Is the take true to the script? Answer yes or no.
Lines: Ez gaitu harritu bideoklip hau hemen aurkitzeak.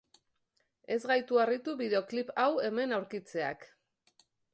yes